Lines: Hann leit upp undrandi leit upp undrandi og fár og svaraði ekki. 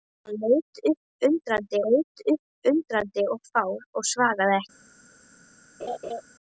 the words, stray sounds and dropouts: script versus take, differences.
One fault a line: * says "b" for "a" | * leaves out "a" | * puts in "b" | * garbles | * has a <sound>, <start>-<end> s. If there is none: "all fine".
* has a laugh, 5.8-6.2 s